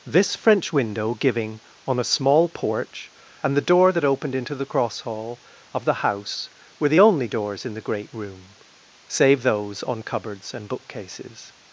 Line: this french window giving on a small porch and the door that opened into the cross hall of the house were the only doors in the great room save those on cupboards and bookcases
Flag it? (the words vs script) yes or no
no